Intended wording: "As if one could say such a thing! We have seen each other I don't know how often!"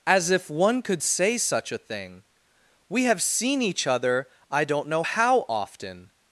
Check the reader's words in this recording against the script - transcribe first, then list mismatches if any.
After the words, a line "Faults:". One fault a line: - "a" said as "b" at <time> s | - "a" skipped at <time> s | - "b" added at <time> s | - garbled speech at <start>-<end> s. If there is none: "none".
"As if one could say such a thing! We have seen each other I don't know how often!"
Faults:
none